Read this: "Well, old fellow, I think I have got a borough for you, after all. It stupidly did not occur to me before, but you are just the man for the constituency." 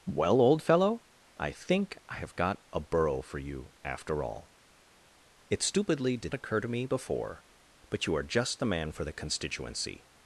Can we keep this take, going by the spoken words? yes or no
no